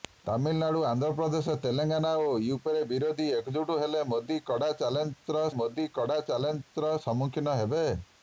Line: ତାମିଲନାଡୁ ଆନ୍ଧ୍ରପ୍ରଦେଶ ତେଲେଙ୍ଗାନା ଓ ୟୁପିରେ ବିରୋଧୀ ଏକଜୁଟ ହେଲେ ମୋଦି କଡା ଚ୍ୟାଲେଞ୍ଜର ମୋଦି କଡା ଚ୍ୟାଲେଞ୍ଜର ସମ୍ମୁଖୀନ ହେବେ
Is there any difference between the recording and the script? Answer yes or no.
no